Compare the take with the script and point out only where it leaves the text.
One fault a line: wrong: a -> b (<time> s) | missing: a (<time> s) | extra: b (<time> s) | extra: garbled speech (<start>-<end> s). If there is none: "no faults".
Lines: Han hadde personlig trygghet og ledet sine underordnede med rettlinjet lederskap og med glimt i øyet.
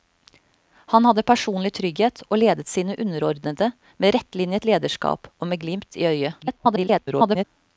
extra: garbled speech (6.4-7.4 s)